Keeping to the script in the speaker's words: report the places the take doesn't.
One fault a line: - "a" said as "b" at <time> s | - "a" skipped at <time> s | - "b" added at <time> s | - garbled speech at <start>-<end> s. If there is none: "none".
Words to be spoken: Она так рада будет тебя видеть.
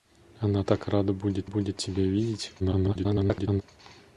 - "будет" added at 1.4 s
- garbled speech at 2.6-3.6 s